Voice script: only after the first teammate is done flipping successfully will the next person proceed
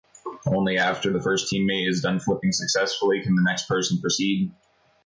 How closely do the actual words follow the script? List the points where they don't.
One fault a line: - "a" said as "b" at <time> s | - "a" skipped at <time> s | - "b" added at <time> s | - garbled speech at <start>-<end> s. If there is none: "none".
- "will" said as "can" at 3.2 s